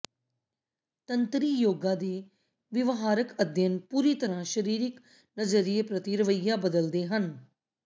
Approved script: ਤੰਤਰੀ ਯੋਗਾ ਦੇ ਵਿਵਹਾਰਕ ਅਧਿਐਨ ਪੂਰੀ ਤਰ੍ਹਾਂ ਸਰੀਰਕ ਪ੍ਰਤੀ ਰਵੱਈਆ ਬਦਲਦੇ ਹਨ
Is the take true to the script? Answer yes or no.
no